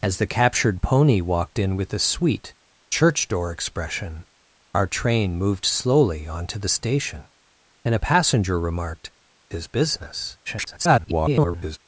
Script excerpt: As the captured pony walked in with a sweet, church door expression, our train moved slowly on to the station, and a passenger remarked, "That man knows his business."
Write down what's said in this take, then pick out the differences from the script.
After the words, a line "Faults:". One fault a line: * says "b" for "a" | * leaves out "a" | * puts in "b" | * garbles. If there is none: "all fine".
As the captured pony walked in with a sweet, church door expression, our train moved slowly on to the station, and a passenger remarked, "His business." [garbled]
Faults:
* leaves out "That man knows"
* garbles